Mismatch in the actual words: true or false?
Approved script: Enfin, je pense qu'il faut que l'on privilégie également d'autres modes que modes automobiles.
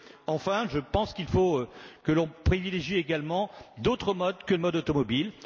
false